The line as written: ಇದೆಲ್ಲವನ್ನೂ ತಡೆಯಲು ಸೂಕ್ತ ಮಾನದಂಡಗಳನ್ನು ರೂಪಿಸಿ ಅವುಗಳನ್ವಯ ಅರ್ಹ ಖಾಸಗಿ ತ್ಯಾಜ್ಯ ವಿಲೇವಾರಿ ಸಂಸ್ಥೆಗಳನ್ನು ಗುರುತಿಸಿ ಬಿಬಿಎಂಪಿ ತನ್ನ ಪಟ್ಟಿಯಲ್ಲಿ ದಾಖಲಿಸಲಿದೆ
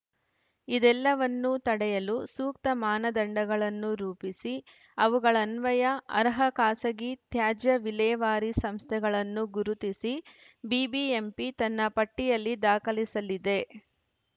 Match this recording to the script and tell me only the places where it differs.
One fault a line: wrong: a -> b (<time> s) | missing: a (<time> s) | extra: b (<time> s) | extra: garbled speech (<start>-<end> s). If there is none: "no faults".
no faults